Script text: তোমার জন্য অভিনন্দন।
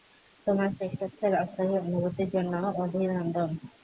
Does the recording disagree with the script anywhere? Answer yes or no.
yes